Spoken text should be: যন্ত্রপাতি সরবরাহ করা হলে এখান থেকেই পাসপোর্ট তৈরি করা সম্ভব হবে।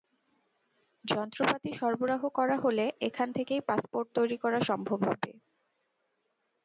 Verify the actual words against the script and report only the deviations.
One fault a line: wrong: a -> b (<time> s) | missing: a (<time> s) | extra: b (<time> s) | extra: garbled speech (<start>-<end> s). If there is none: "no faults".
no faults